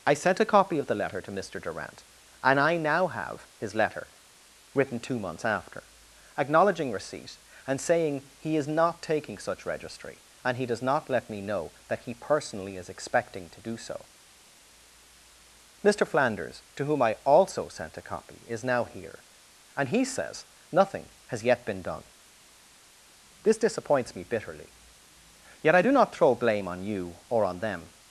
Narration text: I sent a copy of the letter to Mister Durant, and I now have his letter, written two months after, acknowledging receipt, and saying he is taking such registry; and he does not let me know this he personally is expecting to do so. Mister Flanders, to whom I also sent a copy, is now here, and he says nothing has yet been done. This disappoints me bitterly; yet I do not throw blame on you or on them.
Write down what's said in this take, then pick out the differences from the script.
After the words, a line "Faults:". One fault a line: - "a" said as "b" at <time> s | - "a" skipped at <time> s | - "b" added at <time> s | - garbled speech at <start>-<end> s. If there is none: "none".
I sent a copy of the letter to Mister Durant, and I now have his letter, written two months after, acknowledging receipt, and saying he is not taking such registry; and he does not let me know that he personally is expecting to do so. Mister Flanders, to whom I also sent a copy, is now here, and he says nothing has yet been done. This disappoints me bitterly; yet I do not throw blame on you or on them.
Faults:
- "not" added at 8.7 s
- "this" said as "that" at 11.9 s